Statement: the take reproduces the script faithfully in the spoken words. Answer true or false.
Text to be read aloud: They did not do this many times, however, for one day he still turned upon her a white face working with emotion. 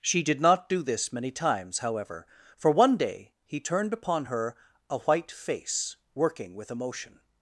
false